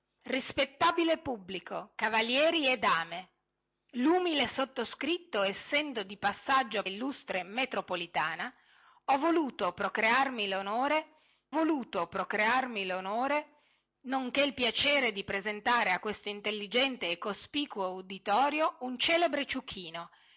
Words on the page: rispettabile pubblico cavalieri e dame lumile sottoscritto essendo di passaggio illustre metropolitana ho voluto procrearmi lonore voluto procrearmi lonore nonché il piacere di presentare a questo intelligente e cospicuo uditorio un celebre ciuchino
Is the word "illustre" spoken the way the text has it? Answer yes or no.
yes